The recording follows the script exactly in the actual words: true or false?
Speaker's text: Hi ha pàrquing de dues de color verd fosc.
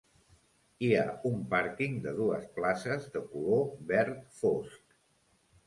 false